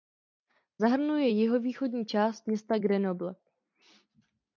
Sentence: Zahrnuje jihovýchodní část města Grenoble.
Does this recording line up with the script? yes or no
yes